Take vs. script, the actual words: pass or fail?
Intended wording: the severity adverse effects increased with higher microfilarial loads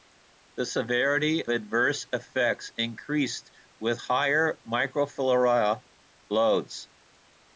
pass